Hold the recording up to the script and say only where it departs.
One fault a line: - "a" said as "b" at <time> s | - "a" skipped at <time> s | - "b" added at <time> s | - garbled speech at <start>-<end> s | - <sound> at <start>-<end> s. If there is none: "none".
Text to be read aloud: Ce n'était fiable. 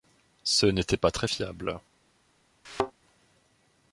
- "pas très" added at 1.0 s
- thud at 2.6-2.9 s